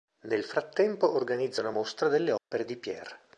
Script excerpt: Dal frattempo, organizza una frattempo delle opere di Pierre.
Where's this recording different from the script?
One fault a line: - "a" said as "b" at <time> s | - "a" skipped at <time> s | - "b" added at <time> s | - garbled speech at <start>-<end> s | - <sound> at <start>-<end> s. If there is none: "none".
- "Dal" said as "Nel" at 0.2 s
- "frattempo" said as "mostra" at 1.7 s
- dropout at 2.4-2.5 s